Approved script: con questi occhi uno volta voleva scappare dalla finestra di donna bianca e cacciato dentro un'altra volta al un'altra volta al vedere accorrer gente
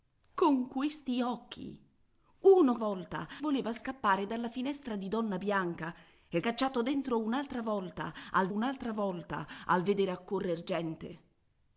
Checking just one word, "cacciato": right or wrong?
right